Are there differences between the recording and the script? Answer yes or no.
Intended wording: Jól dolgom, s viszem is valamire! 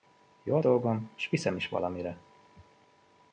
no